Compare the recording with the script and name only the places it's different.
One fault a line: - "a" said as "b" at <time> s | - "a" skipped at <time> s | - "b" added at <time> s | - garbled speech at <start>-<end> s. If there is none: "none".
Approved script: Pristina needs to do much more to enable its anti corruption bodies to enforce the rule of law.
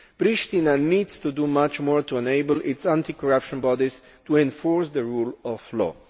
none